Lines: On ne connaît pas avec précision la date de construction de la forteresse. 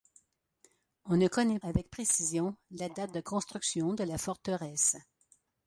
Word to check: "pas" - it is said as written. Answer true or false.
false